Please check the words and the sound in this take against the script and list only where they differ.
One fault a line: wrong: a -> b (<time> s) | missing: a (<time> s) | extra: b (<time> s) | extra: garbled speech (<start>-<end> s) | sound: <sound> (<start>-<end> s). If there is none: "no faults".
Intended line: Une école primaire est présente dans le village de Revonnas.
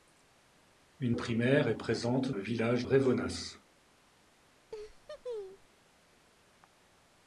missing: école (1.1 s)
missing: dans (2.3 s)
missing: de (2.9 s)
sound: laugh (4.7-5.7 s)